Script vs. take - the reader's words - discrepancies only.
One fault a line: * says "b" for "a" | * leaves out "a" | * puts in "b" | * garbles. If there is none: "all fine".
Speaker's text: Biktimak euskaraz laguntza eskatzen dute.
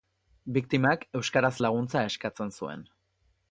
* says "zuen" for "dute"